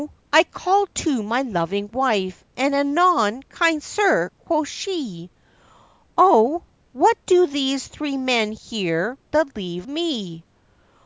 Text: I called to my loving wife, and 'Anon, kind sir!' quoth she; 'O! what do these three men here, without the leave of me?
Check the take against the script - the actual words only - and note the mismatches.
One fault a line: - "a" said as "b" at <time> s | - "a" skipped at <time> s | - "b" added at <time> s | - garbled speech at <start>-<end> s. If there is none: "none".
- "without" skipped at 9.2 s
- "of" skipped at 9.9 s